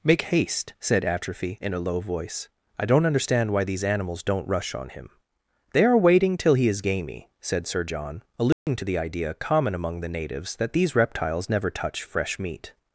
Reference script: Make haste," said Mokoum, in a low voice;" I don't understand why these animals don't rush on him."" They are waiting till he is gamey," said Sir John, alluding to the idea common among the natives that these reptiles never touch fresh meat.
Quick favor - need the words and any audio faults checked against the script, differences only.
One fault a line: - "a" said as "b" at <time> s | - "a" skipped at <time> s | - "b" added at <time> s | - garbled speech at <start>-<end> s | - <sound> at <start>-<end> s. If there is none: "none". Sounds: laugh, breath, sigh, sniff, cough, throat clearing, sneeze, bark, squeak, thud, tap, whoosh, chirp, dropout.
- "Mokoum" said as "Atrophy" at 1.1 s
- dropout at 8.5-8.7 s